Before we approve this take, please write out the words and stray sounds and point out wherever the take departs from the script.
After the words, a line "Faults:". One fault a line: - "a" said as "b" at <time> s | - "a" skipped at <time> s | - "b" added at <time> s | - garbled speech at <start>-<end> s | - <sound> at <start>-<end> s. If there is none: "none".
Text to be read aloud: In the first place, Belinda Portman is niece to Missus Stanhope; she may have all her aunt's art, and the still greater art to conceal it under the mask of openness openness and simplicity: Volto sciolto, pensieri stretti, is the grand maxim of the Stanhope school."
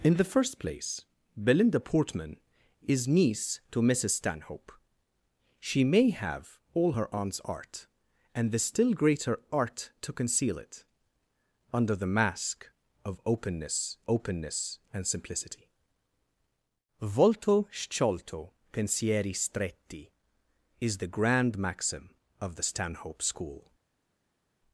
In the first place, Belinda Portman is niece to Missus Stanhope; she may have all her aunt's art, and the still greater art to conceal it under the mask of openness openness and simplicity: Volto sciolto, pensieri stretti, is the grand maxim of the Stanhope school."
Faults:
none